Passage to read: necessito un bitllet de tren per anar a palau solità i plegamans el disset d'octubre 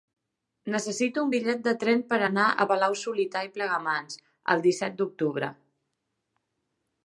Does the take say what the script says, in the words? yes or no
yes